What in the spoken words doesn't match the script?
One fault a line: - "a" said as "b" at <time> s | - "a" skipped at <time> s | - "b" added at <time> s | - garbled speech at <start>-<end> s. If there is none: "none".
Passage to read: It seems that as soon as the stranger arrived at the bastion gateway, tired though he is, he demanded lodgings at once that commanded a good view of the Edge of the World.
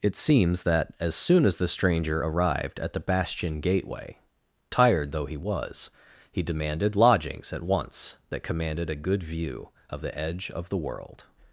- "is" said as "was" at 5.4 s